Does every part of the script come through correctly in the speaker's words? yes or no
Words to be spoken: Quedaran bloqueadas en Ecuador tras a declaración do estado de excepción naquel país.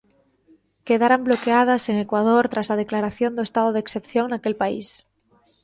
yes